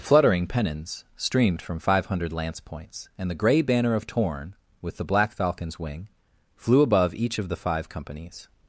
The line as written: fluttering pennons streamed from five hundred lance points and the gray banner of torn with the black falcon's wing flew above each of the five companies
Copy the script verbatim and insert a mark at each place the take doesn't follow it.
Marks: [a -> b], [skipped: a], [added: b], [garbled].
fluttering pennons streamed from five hundred lance points and the gray banner of torn with the black falcon's wing flew above each of the five companies